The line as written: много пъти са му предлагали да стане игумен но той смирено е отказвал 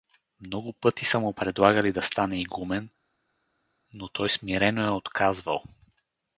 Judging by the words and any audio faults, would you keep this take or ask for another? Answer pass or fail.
pass